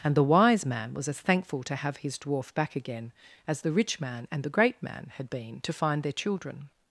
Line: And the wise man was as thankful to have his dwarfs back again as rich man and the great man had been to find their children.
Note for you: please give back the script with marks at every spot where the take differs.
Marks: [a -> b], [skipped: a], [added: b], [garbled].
And the wise man was as thankful to have his [dwarfs -> dwarf] back again as [added: the] rich man and the great man had been to find their children.